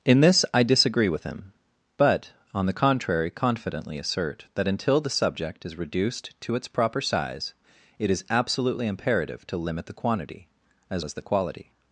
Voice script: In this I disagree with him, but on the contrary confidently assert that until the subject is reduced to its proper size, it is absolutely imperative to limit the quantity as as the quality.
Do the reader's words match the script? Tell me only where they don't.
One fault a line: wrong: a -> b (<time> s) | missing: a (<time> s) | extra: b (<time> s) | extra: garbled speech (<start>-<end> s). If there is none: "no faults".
no faults